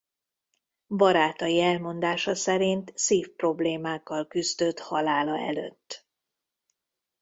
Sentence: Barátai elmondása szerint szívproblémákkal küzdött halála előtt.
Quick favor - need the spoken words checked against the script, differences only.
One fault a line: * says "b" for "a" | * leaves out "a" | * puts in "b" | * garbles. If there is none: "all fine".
all fine